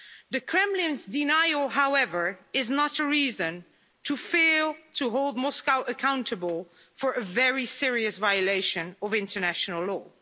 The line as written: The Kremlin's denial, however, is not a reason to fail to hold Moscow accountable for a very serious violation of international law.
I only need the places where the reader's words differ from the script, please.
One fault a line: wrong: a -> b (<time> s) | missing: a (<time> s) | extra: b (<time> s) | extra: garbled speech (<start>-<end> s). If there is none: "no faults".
no faults